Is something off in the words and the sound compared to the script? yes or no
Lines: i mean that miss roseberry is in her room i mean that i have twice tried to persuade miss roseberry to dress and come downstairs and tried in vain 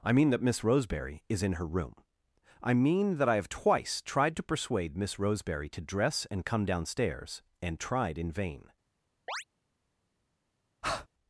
yes